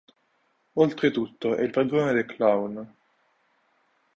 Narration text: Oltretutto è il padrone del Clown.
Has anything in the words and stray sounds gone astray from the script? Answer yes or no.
no